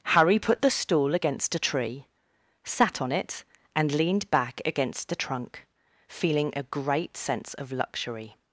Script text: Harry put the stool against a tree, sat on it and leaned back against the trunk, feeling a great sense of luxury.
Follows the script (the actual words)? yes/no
yes